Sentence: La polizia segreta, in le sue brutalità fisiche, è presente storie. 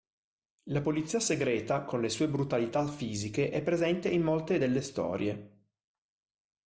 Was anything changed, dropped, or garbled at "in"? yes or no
yes